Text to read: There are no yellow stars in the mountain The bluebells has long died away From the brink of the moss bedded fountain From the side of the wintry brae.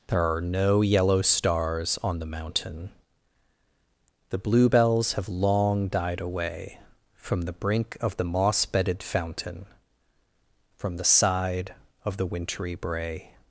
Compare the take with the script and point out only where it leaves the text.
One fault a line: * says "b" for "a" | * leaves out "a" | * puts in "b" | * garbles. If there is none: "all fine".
* says "on" for "in"
* says "have" for "has"